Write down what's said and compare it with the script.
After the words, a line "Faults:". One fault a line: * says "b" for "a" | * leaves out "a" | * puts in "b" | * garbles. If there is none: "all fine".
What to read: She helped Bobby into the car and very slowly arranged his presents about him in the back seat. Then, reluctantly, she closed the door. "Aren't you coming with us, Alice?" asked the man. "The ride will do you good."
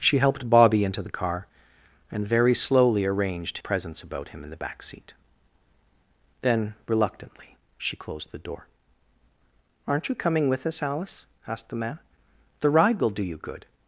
She helped Bobby into the car and very slowly arranged presents about him in the back seat. Then, reluctantly, she closed the door. "Aren't you coming with us, Alice?" asked the man. "The ride will do you good."
Faults:
* leaves out "his"